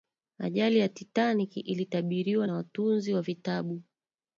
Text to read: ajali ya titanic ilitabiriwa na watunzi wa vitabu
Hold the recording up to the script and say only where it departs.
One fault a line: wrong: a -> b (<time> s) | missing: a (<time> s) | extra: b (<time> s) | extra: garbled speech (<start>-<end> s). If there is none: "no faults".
no faults